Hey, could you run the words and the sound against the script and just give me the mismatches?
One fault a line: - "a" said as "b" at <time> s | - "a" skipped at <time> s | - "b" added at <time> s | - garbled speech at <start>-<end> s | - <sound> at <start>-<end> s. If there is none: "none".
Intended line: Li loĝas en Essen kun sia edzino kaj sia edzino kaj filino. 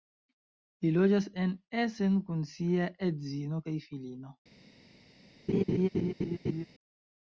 - "sia edzino kaj" skipped at 3.8 s
- laugh at 5.5-6.7 s